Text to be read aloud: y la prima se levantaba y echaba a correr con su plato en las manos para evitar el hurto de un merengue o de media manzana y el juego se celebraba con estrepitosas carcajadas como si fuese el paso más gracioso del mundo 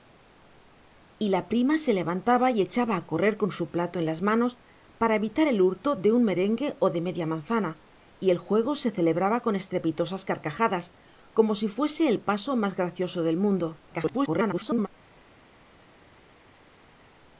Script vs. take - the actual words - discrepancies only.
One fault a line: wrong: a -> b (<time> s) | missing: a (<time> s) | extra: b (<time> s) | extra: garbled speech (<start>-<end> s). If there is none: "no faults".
extra: garbled speech (13.9-14.9 s)